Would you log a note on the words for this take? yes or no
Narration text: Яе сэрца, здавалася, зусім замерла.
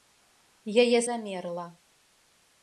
yes